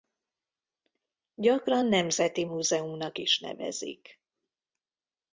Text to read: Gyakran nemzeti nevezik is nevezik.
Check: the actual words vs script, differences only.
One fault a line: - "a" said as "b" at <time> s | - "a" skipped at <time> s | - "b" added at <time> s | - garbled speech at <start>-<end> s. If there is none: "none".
- "nevezik" said as "múzeumnak" at 2.4 s